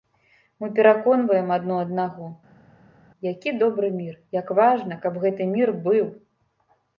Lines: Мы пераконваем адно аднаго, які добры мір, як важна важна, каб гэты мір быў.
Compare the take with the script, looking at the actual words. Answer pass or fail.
fail